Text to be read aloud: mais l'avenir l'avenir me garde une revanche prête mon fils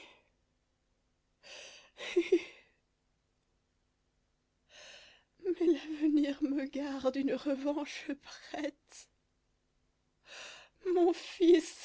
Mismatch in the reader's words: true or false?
true